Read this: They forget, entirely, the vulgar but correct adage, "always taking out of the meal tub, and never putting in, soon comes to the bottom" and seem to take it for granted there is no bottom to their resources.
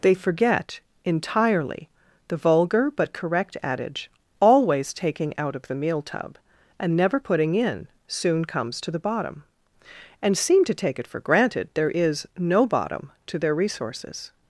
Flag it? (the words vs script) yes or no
no